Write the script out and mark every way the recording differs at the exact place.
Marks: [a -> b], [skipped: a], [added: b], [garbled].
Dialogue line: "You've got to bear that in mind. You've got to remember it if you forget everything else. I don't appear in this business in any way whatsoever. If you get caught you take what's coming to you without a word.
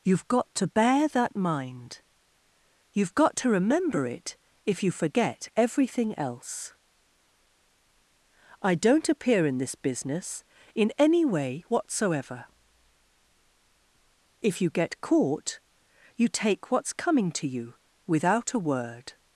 "You've got to bear that [skipped: in] mind. You've got to remember it if you forget everything else. I don't appear in this business in any way whatsoever. If you get caught you take what's coming to you without a word.